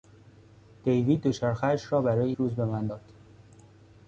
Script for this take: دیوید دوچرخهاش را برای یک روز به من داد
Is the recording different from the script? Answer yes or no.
yes